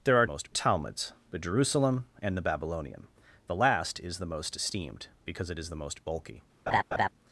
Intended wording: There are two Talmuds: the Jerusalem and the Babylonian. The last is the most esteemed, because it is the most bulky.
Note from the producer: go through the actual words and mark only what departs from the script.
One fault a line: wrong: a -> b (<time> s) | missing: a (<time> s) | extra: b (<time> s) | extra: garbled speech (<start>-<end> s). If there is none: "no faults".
wrong: two -> most (0.2 s)